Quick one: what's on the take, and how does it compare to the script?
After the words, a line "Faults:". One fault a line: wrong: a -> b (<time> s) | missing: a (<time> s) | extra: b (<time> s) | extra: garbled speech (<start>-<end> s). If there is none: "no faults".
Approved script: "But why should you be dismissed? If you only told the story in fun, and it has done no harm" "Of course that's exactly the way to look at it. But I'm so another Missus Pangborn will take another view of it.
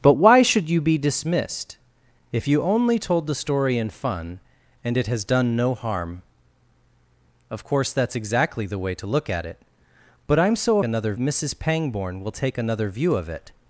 "But why should you be dismissed? If you only told the story in fun, and it has done no harm" "Of course that's exactly the way to look at it. But I'm so another Missus Pangborn will take another view of it.
Faults:
no faults